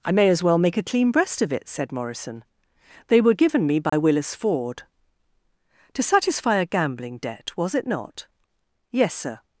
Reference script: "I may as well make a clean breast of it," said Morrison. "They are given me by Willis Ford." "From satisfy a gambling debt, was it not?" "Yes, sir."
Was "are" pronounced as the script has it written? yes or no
no